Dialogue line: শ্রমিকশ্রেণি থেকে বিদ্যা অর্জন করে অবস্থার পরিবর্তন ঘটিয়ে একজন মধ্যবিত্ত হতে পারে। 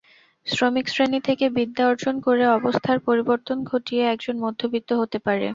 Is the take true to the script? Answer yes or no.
yes